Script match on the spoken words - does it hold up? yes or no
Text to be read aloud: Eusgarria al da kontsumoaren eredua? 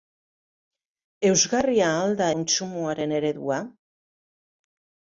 yes